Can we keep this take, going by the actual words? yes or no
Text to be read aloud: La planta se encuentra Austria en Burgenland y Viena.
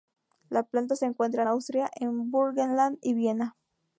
yes